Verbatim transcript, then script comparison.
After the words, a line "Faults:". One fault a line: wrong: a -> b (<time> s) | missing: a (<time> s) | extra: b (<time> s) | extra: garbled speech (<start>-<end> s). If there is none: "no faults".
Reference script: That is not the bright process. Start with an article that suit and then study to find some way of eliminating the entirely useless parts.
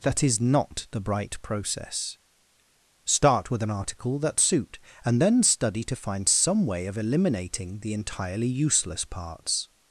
That is not the bright process. Start with an article that suit and then study to find some way of eliminating the entirely useless parts.
Faults:
no faults